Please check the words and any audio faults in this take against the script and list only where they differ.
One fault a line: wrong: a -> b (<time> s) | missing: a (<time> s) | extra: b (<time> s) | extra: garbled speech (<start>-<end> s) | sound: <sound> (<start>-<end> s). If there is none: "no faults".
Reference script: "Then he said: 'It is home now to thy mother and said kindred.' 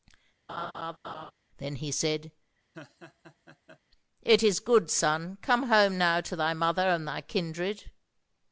sound: laugh (0.5-1.3 s)
sound: laugh (2.7-3.8 s)
extra: good son come (4.6 s)
wrong: said -> thy (7.1 s)